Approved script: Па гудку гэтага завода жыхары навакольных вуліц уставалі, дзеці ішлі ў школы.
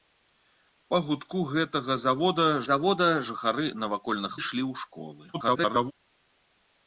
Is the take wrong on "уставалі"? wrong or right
wrong